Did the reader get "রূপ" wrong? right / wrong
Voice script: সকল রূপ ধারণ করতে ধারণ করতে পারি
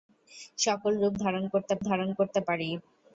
right